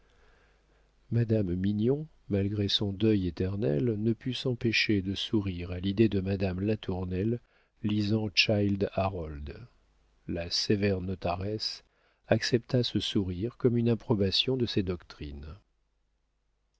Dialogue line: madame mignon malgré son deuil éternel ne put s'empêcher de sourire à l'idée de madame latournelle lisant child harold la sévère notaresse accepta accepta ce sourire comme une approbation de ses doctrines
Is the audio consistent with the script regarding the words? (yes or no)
no